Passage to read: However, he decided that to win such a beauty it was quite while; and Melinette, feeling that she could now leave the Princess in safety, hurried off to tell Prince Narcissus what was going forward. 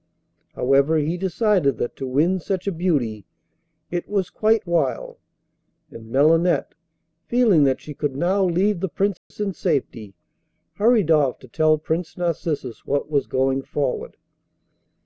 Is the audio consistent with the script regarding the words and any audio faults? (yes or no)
no